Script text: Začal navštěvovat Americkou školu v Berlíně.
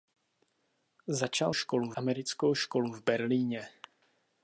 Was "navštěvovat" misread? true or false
true